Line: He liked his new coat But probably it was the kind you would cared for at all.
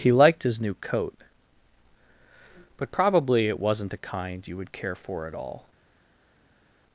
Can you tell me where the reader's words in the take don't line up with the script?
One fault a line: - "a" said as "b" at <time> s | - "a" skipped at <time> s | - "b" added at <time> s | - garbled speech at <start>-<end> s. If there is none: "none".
- "was" said as "wasn't" at 3.6 s
- "cared" said as "care" at 4.7 s